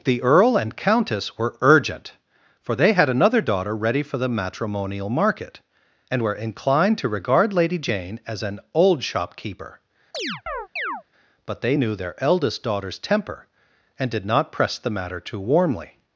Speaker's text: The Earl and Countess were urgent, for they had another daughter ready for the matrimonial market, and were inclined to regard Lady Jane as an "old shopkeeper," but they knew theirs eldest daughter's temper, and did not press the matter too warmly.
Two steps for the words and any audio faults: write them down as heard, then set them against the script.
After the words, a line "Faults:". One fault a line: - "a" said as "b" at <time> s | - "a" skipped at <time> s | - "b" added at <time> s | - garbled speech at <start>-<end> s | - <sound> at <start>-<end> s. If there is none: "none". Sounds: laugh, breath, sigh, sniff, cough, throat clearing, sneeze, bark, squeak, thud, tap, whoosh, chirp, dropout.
The Earl and Countess were urgent, for they had another daughter ready for the matrimonial market, and were inclined to regard Lady Jane as an "old shopkeeper," but they knew their eldest daughter's temper, and did not press the matter too warmly.
Faults:
- chirp at 10.1-11.0 s
- "theirs" said as "their" at 12.0 s